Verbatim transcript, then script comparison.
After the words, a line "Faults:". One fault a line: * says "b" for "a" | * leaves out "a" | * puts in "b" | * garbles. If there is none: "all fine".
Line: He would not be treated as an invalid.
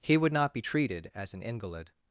He would not be treated as an invalid.
Faults:
all fine